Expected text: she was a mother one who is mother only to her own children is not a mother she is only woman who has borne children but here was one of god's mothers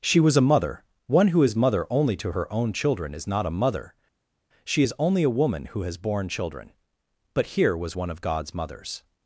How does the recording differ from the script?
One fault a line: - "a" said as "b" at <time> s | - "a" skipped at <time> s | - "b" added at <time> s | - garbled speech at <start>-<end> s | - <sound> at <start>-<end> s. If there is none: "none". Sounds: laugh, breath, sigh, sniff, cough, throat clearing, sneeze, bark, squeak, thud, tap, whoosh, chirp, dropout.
- "a" added at 5.2 s